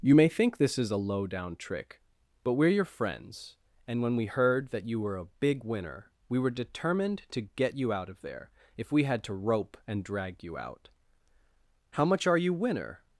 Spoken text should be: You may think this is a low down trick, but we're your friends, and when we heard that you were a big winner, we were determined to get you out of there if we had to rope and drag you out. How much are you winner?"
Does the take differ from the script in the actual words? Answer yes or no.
no